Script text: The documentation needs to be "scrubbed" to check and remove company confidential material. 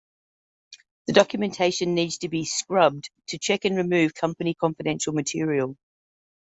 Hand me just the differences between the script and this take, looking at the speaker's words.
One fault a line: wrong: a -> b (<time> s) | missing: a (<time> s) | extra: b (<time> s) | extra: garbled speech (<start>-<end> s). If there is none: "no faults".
no faults